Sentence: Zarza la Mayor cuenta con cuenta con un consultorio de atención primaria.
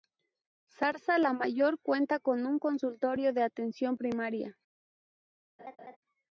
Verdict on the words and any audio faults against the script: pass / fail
fail